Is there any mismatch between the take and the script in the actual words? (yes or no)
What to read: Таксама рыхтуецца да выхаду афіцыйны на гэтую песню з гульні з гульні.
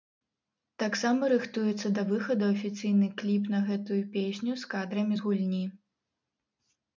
yes